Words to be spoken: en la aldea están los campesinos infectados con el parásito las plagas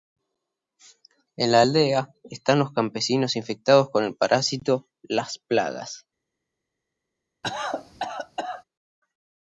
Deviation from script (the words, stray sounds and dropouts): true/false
true